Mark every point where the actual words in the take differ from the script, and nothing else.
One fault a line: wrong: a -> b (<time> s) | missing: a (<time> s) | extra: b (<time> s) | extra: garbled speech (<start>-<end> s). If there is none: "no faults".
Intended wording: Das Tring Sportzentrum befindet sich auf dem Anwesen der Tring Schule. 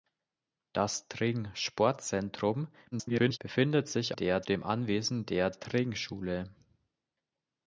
extra: garbled speech (2.9-3.4 s)
wrong: auf -> der (4.2 s)